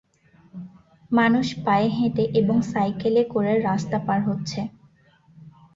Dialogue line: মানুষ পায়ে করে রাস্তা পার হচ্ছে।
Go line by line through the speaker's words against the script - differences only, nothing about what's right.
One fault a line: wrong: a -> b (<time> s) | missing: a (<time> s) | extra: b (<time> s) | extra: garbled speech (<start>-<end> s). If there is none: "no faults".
extra: হেঁটে এবং সাইকেলে (1.9 s)